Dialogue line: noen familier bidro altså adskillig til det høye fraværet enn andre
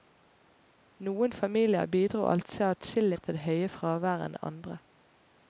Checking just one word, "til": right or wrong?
right